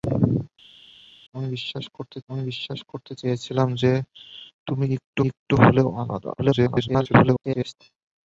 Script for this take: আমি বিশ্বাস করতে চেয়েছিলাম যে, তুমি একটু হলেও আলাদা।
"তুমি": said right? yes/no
yes